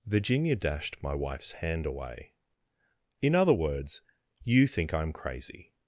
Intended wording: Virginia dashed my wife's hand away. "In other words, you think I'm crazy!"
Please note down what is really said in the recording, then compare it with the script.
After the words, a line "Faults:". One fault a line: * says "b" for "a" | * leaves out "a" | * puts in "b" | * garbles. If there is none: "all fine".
Virginia dashed my wife's hand away. "In other words, you think I'm crazy!"
Faults:
all fine